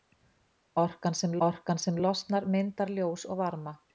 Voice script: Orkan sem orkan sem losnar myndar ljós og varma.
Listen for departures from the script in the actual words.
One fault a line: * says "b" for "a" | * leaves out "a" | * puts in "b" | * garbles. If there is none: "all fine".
all fine